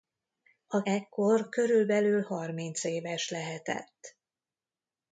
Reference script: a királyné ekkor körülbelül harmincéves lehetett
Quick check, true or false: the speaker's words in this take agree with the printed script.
false